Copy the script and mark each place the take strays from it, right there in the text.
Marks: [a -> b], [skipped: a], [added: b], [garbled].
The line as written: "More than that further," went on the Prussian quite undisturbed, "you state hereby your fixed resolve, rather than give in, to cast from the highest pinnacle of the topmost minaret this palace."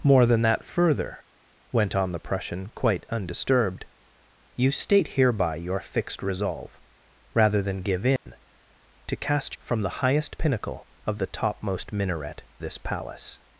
"More than that further," went on the Prussian quite undisturbed, "you state hereby your fixed resolve, rather than give in, to cast from the highest pinnacle of the topmost minaret this palace."